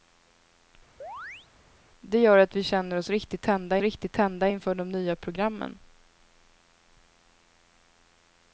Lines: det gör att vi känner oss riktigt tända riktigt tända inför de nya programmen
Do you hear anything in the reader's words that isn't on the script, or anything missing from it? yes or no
no